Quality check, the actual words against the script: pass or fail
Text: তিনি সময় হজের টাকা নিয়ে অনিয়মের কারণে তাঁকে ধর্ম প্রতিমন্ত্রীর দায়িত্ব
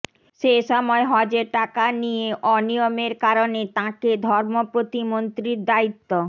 fail